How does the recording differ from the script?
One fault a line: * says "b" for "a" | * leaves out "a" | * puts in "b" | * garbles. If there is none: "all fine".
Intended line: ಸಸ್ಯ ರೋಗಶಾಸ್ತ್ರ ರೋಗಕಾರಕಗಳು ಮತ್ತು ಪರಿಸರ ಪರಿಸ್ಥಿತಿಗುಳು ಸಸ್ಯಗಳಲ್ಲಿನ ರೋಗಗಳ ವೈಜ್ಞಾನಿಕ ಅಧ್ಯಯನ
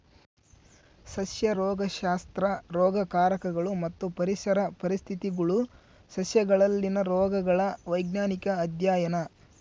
all fine